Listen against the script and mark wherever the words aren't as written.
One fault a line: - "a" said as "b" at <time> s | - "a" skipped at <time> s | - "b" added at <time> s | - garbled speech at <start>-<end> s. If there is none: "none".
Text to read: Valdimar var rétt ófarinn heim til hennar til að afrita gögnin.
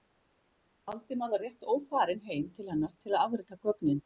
none